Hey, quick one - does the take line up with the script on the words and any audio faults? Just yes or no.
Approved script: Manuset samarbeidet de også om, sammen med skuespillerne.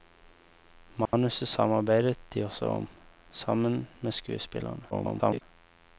no